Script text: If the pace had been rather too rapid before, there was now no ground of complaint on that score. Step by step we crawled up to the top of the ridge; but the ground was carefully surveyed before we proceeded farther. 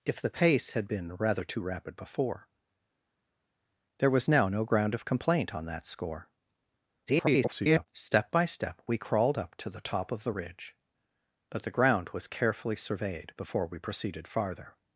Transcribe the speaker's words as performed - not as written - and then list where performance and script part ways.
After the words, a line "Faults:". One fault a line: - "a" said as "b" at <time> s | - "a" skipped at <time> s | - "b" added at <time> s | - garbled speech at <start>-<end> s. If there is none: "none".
If the pace had been rather too rapid before, there was now no ground of complaint on that score. [garbled] Step by step we crawled up to the top of the ridge; but the ground was carefully surveyed before we proceeded farther.
Faults:
- garbled speech at 7.1-7.9 s